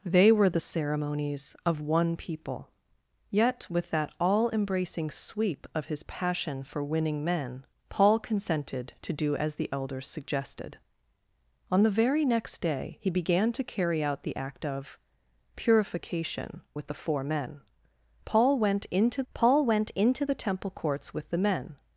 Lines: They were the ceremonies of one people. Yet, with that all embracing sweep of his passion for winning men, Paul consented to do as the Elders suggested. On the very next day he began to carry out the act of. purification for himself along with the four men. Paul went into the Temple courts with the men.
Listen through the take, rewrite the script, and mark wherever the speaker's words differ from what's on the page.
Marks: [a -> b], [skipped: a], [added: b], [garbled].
They were the ceremonies of one people. Yet, with that all embracing sweep of his passion for winning men, Paul consented to do as the Elders suggested. On the very next day he began to carry out the act of. purification [skipped: for himself along] with the four men. Paul went into [added: paul went into] the Temple courts with the men.